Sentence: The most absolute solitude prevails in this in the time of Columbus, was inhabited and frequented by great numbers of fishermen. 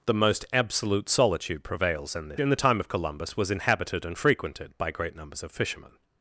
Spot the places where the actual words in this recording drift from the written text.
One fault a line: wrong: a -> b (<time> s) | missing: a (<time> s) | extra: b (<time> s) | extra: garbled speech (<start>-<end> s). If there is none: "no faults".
no faults